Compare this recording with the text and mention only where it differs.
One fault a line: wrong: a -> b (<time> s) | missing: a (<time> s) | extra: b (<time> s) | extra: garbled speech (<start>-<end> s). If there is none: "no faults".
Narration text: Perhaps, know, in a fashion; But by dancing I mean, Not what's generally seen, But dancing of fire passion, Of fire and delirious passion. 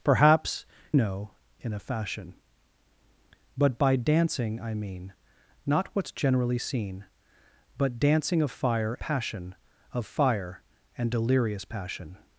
no faults